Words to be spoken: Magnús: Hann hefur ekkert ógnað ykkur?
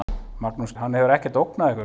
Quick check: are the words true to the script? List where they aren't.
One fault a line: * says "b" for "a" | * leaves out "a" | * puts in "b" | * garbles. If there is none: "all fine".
all fine